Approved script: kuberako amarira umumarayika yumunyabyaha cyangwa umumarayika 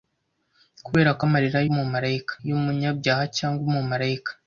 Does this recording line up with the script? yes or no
yes